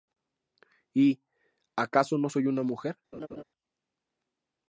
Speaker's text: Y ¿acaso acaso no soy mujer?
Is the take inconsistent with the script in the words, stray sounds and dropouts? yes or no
yes